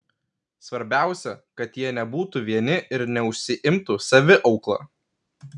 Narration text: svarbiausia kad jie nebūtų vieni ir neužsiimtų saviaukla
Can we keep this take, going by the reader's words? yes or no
yes